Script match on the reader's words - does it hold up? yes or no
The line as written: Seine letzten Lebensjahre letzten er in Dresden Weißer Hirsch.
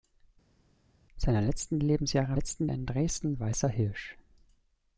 yes